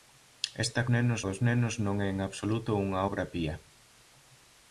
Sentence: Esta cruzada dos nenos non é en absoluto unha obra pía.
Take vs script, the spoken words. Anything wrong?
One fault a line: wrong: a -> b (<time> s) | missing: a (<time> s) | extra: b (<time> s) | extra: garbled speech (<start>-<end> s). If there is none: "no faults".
wrong: cruzada -> nenos (0.9 s)